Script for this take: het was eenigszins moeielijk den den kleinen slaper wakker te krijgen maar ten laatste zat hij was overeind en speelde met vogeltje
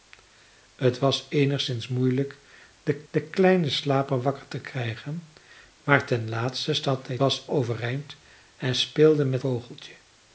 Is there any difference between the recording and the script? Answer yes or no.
no